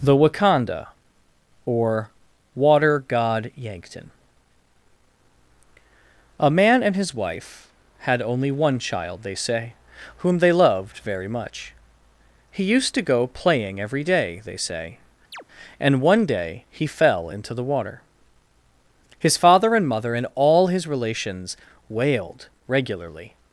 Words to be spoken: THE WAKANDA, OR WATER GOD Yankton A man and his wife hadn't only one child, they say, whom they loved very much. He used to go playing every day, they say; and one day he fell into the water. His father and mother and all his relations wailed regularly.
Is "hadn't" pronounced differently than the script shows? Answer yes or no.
yes